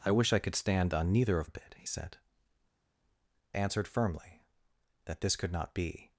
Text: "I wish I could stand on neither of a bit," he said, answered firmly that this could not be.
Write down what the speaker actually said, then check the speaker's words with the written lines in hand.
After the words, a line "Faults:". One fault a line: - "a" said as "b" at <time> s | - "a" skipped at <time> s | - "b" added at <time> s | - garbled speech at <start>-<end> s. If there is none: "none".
"I wish I could stand on neither of a bit," he said, answered firmly that this could not be.
Faults:
none